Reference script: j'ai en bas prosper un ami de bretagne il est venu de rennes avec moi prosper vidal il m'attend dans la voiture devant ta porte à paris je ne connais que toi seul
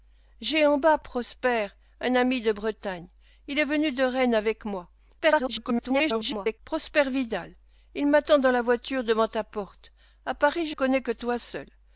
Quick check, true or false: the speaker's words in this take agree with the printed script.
false